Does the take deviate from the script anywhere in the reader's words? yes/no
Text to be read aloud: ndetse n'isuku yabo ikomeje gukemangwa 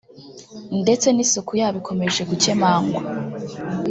no